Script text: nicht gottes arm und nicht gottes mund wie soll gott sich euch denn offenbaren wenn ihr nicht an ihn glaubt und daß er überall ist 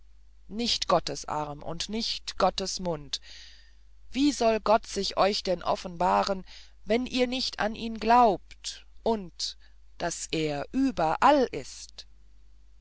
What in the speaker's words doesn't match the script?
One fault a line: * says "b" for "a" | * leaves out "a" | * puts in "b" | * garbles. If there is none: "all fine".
all fine